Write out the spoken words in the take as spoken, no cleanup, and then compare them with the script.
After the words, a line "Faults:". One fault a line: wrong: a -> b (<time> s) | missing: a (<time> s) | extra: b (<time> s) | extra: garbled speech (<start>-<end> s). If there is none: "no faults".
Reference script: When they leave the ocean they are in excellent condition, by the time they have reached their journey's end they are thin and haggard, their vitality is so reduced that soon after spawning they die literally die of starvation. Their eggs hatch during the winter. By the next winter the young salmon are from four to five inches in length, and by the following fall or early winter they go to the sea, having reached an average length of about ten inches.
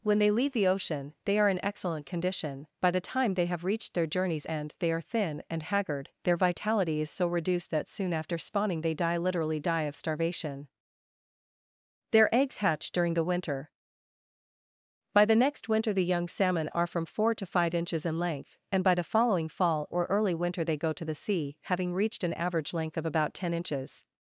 When they leave the ocean they are in excellent condition, by the time they have reached their journey's end they are thin and haggard, their vitality is so reduced that soon after spawning they die literally die of starvation. Their eggs hatch during the winter. By the next winter the young salmon are from four to five inches in length, and by the following fall or early winter they go to the sea, having reached an average length of about ten inches.
Faults:
no faults